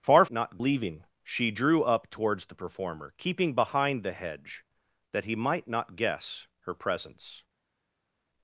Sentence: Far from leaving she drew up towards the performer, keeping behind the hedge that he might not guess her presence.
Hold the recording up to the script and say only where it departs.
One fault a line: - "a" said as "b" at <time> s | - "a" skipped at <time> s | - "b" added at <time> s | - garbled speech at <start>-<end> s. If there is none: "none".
- "from" said as "not" at 0.3 s